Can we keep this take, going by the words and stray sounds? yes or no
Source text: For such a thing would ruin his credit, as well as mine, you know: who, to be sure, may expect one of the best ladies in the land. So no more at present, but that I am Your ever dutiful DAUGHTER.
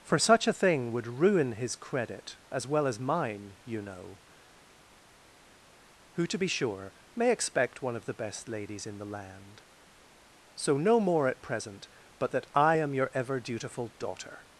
yes